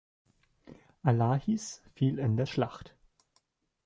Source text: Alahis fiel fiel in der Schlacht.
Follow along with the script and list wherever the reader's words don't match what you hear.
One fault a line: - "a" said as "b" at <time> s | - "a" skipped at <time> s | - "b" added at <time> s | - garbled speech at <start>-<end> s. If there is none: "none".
- "fiel" skipped at 2.2 s